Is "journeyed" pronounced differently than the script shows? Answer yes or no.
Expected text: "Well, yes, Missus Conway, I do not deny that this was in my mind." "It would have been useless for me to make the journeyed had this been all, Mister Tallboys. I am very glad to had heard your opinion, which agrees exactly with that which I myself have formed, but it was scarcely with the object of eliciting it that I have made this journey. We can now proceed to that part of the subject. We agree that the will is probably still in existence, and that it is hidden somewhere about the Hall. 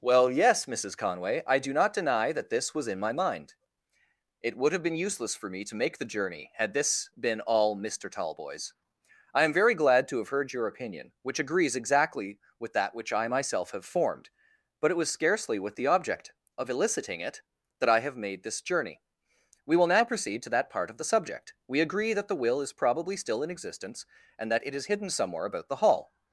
yes